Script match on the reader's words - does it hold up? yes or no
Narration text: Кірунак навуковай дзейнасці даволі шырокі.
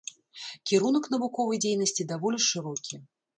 yes